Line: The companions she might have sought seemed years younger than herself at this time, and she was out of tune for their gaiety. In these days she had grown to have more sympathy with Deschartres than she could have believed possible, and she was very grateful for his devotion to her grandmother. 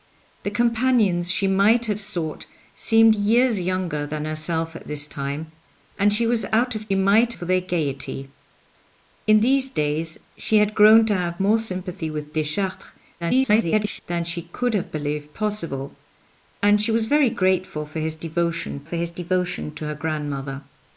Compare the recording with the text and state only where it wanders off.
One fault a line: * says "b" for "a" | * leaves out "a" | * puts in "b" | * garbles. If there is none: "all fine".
* says "might" for "tune"
* garbles
* puts in "for his devotion"